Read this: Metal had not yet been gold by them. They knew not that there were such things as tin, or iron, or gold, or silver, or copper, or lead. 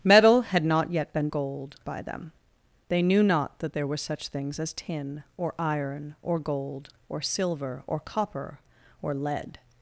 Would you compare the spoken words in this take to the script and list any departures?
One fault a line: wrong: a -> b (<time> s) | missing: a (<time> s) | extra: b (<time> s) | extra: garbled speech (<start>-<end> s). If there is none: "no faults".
no faults